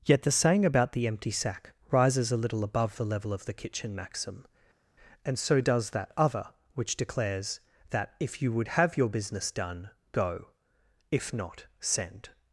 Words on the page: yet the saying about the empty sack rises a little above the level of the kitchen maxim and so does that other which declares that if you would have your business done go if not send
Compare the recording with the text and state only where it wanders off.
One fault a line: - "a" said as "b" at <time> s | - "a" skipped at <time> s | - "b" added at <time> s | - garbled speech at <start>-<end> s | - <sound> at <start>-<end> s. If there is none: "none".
none